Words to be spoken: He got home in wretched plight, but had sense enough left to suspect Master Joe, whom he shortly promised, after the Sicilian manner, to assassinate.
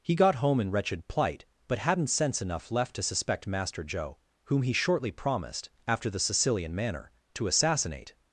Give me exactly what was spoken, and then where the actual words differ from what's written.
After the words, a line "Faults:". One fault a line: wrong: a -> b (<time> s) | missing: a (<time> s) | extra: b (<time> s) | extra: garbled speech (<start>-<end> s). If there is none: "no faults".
He got home in wretched plight, but hadn't sense enough left to suspect Master Joe, whom he shortly promised, after the Sicilian manner, to assassinate.
Faults:
wrong: had -> hadn't (1.8 s)